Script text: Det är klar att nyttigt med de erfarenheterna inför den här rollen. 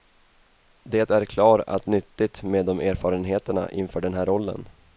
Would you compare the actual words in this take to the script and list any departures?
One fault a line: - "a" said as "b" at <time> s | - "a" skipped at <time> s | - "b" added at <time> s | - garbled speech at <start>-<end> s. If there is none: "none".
none